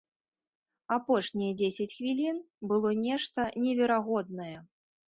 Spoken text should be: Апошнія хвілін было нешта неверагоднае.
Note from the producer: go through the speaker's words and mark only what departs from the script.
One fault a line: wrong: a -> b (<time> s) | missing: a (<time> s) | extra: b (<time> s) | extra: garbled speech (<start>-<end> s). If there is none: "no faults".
extra: дзесяць (1.6 s)